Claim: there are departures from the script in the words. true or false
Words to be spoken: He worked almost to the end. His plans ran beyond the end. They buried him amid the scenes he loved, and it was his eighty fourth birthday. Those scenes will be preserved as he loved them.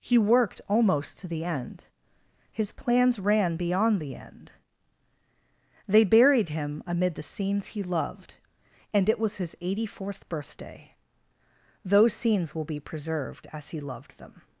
false